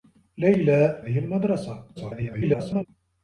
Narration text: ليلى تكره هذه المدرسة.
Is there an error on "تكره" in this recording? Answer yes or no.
yes